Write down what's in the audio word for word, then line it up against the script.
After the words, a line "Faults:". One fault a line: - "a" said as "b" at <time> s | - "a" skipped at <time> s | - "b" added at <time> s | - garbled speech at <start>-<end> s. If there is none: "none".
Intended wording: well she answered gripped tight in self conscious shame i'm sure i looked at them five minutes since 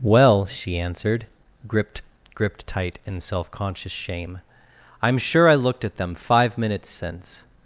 well she answered gripped gripped tight in self conscious shame i'm sure i looked at them five minutes since
Faults:
- "gripped" added at 2.3 s